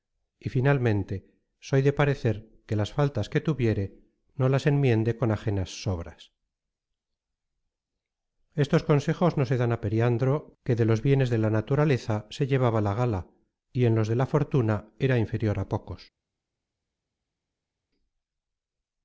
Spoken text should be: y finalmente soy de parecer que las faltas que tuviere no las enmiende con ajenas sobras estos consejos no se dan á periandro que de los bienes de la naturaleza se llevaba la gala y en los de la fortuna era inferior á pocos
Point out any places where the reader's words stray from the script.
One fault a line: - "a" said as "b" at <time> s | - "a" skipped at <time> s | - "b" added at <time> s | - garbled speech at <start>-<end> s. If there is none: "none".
none